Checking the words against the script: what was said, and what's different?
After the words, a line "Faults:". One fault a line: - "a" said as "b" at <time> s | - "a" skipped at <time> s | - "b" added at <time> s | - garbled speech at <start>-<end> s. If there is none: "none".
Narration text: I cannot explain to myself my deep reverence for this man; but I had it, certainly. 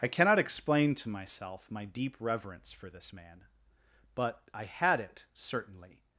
I cannot explain to myself my deep reverence for this man; but I had it, certainly.
Faults:
none